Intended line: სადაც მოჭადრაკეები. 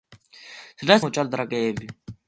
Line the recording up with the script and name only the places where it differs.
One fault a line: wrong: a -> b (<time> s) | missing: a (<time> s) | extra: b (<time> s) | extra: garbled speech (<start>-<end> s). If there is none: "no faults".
no faults